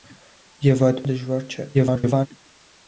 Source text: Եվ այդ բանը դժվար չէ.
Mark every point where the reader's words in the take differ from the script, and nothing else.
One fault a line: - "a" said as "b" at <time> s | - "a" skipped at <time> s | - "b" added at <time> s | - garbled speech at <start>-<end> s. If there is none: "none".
- "բանը" skipped at 1.0 s
- garbled speech at 1.7-2.3 s